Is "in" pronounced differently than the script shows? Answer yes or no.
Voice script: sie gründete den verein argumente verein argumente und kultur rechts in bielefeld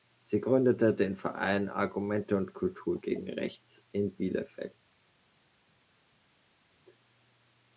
no